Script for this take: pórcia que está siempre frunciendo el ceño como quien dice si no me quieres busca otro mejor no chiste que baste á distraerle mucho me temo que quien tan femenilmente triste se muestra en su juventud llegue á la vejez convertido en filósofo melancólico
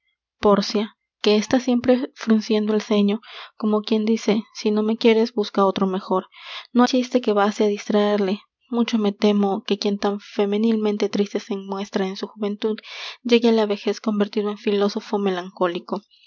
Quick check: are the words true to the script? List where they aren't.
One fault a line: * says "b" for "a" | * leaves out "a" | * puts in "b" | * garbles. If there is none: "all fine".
all fine